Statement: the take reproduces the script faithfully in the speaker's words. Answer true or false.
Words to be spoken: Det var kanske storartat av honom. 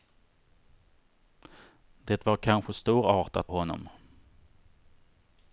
false